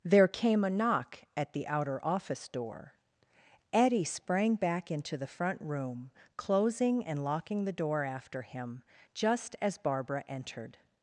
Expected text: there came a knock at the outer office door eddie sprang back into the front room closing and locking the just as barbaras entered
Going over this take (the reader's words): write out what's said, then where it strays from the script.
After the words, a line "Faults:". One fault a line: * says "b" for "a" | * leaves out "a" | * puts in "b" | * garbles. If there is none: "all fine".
there came a knock at the outer office door eddie sprang back into the front room closing and locking the door after him just as barbara entered
Faults:
* puts in "door after him"
* says "barbara" for "barbaras"